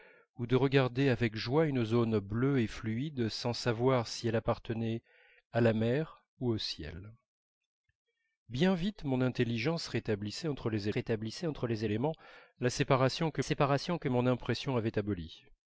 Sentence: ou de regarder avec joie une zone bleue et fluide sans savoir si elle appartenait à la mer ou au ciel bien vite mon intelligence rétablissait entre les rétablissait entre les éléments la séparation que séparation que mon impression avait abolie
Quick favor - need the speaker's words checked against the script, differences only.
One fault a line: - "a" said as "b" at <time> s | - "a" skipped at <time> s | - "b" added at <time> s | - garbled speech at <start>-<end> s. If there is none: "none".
none